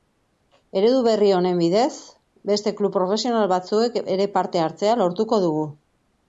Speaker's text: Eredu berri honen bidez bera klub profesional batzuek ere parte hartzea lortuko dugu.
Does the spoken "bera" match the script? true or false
false